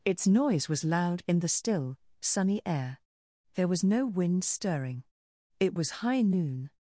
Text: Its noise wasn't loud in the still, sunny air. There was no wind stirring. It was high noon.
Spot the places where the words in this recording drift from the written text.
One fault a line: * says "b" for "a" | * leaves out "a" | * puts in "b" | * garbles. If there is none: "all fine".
* says "was" for "wasn't"